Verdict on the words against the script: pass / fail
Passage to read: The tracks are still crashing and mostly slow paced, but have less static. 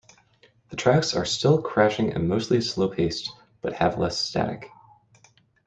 pass